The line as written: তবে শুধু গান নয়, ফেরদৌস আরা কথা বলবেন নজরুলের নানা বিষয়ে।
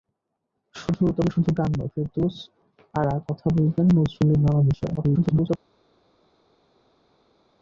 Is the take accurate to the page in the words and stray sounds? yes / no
no